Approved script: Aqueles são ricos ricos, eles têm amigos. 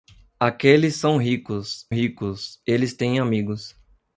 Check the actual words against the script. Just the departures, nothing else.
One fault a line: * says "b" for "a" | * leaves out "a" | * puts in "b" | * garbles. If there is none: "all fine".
all fine